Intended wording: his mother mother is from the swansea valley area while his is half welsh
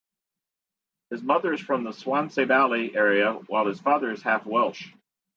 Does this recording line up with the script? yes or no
no